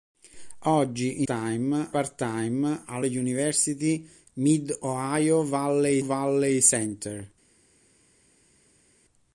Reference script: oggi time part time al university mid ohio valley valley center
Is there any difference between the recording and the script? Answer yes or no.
no